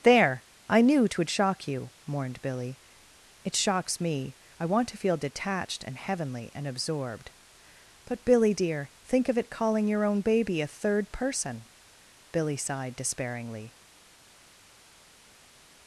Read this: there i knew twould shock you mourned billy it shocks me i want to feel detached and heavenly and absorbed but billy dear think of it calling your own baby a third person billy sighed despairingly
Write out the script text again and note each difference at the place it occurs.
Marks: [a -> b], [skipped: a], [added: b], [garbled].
there i knew twould shock you mourned billy it shocks me i want to feel detached and heavenly and absorbed but billy dear think of it calling your own baby a third person billy sighed despairingly